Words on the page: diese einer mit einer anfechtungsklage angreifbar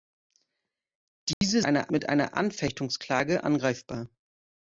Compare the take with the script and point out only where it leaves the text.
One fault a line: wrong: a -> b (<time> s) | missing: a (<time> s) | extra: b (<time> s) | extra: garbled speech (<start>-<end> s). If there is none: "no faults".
no faults